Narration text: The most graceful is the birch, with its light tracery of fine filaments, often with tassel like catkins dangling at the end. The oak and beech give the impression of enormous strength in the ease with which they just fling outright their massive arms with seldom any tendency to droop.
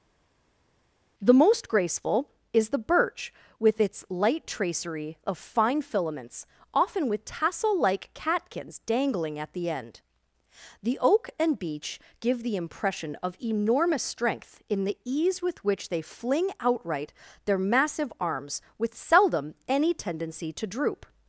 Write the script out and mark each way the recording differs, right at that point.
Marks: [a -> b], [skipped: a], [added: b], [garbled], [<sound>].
The most graceful is the birch, with its light tracery of fine filaments, often with tassel like catkins dangling at the end. The oak and beech give the impression of enormous strength in the ease with which they [skipped: just] fling outright their massive arms with seldom any tendency to droop.